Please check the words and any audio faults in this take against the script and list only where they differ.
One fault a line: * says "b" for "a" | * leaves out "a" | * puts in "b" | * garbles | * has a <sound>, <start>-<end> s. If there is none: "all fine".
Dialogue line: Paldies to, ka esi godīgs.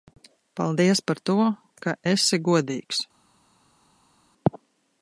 * puts in "par"